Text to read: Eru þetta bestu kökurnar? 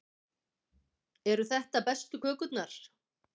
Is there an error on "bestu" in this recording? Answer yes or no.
no